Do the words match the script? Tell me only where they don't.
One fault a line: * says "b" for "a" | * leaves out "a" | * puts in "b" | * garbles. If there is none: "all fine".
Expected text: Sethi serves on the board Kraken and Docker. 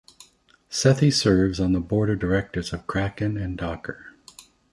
* puts in "of directors of"